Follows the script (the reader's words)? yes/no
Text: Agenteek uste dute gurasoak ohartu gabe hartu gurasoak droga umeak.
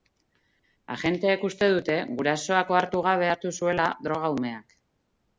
no